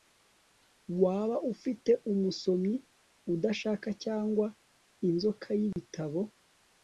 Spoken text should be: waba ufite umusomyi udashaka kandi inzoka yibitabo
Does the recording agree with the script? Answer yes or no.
no